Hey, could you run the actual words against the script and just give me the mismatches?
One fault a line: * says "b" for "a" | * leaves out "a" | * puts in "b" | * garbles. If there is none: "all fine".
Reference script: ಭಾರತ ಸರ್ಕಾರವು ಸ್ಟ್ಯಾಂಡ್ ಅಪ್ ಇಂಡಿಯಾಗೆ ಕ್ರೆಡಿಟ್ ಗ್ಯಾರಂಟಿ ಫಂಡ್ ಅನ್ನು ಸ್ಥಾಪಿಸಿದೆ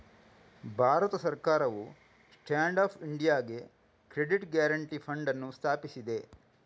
all fine